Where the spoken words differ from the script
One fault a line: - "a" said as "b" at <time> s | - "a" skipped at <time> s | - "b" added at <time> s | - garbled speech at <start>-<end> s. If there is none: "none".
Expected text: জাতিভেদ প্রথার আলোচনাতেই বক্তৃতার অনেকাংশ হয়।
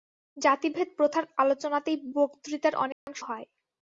none